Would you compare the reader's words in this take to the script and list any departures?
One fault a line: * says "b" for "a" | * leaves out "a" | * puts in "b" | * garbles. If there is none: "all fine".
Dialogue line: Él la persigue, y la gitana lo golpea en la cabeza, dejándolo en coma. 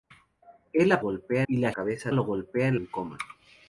* says "golpea" for "persigue"
* says "cabeza" for "gitana"
* leaves out "la cabeza dejándolo"